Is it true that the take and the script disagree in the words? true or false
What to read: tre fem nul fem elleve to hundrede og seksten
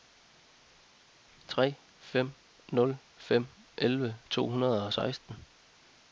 false